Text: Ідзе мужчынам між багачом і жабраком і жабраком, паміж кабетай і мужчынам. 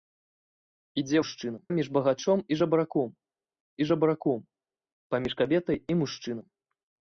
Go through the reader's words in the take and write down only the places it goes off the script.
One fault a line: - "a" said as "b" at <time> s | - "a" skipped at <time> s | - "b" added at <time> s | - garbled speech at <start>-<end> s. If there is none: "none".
none